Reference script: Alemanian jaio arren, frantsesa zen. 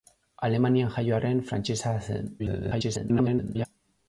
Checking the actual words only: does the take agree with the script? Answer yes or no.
no